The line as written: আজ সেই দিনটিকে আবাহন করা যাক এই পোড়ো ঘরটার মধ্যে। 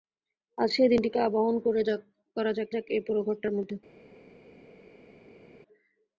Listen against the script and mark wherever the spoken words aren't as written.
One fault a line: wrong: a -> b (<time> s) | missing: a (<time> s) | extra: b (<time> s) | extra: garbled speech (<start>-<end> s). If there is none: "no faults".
extra: যাক (2.7 s)